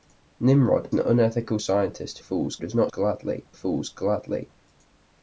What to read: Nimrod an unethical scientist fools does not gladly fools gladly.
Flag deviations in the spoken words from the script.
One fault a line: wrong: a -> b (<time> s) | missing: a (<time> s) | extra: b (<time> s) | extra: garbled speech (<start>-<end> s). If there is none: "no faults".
no faults